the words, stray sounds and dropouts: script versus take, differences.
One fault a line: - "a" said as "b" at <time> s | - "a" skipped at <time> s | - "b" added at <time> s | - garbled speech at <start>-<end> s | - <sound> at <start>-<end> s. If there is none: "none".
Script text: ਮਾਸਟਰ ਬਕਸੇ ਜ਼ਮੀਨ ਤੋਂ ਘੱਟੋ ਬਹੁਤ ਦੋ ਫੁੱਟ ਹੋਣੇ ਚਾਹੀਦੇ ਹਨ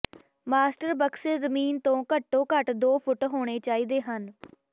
- "ਬਹੁਤ" said as "ਘੱਟ" at 2.5 s